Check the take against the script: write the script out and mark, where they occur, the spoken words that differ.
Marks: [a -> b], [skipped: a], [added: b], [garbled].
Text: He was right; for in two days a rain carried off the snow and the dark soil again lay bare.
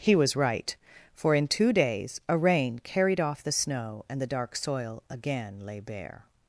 He was right; for in two days a rain carried off the snow and the dark soil again lay bare.